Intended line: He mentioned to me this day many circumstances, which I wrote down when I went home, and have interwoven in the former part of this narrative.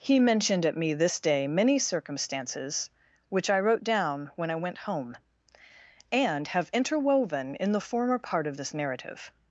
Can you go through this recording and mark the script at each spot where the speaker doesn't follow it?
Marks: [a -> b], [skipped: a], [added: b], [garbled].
He mentioned [to -> at] me this day many circumstances, which I wrote down when I went home, and have interwoven in the former part of this narrative.